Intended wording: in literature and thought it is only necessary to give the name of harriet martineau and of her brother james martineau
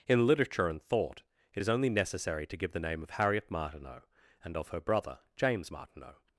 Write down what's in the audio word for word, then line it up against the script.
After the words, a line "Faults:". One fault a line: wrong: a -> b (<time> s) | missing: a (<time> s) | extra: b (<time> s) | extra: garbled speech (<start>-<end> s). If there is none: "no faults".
in literature and thought it is only necessary to give the name of harriet martineau and of her brother james martineau
Faults:
no faults